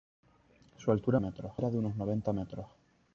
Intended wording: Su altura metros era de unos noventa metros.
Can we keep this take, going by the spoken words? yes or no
yes